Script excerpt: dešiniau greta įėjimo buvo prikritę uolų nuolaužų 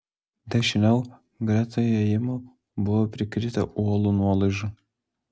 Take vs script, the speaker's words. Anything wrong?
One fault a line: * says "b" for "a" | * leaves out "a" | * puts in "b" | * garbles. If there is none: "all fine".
all fine